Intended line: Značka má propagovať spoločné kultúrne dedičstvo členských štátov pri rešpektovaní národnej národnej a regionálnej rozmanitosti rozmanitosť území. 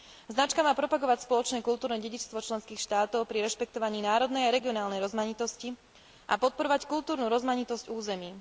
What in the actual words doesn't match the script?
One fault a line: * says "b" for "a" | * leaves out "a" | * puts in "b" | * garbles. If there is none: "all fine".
* leaves out "národnej"
* puts in "a podporovať kultúrnu"